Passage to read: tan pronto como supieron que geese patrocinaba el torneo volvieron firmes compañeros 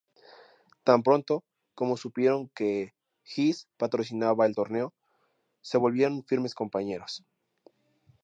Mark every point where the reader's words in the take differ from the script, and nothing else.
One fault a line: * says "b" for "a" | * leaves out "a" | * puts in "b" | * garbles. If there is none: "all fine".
* puts in "se"